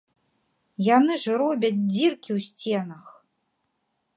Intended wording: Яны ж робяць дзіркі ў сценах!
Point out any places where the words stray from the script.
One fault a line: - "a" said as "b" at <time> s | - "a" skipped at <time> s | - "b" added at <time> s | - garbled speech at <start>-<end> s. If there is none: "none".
none